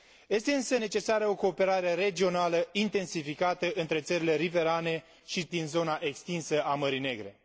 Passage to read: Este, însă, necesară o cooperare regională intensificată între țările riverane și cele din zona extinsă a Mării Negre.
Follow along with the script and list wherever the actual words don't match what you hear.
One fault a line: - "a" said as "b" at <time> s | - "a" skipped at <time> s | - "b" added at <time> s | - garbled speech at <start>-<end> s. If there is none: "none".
- "cele" skipped at 5.5 s